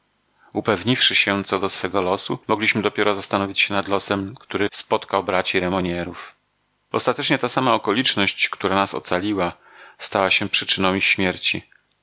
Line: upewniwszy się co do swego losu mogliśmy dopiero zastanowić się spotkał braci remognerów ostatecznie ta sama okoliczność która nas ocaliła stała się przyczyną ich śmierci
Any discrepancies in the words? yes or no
yes